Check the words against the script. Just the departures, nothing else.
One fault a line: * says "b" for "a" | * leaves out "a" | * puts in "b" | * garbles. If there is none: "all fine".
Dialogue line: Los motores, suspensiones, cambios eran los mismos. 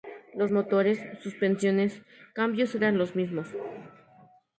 all fine